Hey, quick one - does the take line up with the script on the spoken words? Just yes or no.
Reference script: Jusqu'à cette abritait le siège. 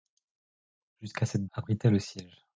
yes